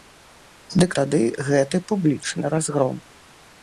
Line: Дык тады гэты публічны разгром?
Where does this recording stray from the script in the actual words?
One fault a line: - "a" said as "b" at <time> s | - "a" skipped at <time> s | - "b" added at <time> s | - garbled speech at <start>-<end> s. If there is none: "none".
none